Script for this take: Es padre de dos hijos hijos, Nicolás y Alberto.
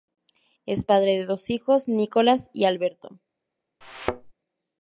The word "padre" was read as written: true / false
true